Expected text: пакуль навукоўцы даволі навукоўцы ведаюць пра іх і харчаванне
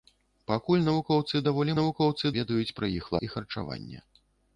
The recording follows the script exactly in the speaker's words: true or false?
true